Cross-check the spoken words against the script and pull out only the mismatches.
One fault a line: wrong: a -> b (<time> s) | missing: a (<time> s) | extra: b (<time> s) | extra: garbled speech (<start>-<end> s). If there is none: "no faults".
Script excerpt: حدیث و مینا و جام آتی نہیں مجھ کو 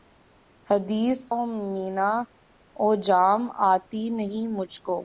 no faults